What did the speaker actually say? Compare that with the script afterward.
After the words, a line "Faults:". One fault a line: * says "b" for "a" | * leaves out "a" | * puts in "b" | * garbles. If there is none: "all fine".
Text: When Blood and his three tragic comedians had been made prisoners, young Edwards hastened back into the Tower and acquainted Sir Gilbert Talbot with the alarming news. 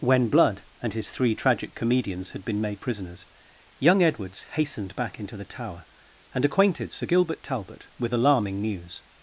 When Blood and his three tragic comedians had been made prisoners, young Edwards hastened back into the Tower and acquainted Sir Gilbert Talbot with alarming news.
Faults:
* leaves out "the"